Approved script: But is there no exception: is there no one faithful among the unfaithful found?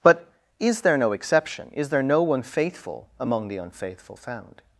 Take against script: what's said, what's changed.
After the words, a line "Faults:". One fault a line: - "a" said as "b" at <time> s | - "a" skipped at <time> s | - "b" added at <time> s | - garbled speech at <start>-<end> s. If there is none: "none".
But is there no exception: is there no one faithful among the unfaithful found?
Faults:
none